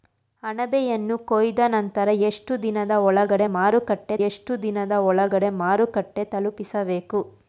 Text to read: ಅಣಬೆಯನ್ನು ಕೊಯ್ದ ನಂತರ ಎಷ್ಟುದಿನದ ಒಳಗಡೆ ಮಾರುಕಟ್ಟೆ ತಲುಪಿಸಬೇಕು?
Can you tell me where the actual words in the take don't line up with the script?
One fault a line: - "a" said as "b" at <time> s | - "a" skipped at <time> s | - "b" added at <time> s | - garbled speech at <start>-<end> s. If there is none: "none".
- "ಎಷ್ಟುದಿನದ ಒಳಗಡೆ ಮಾರುಕಟ್ಟೆ" added at 4.3 s